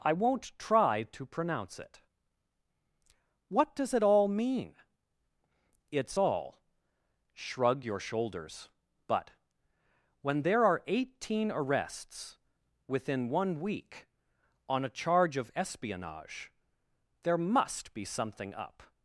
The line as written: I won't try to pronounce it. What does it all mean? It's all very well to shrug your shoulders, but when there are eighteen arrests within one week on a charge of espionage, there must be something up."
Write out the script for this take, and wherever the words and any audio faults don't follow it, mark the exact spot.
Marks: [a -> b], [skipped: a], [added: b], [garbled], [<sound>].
I won't try to pronounce it. What does it all mean? It's all [skipped: very well to] shrug your shoulders, but when there are eighteen arrests within one week on a charge of espionage, there must be something up."